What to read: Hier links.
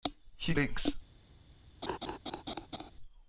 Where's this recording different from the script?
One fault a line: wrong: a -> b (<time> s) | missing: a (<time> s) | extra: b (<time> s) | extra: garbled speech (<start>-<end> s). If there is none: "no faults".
no faults